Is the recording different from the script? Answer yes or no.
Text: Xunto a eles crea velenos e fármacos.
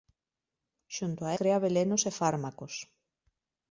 yes